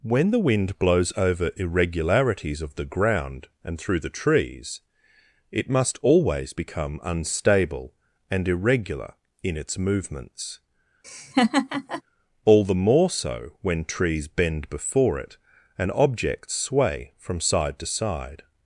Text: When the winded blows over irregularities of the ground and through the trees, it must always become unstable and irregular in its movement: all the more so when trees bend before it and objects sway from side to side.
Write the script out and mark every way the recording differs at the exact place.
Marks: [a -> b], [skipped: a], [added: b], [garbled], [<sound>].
When the [winded -> wind] blows over irregularities of the ground and through the trees, it must always become unstable and irregular in its [movement: -> movements] [laugh] all the more so when trees bend before it and objects sway from side to side.